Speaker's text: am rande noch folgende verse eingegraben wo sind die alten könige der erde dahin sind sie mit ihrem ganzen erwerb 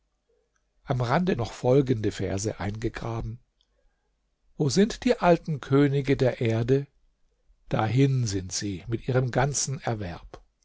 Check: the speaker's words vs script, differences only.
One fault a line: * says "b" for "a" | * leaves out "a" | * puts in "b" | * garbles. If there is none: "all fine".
all fine